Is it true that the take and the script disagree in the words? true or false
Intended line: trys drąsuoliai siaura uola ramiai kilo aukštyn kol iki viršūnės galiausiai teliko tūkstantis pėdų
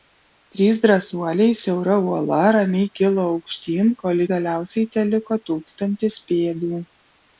true